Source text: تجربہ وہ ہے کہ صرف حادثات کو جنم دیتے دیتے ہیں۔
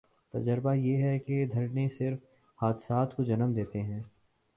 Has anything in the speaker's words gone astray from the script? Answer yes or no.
yes